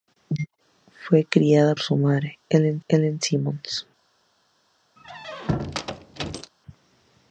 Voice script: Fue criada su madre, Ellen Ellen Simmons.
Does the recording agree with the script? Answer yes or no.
yes